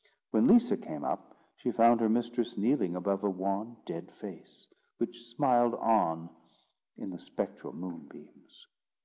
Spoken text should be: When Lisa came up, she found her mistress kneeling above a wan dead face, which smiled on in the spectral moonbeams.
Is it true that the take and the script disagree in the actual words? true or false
false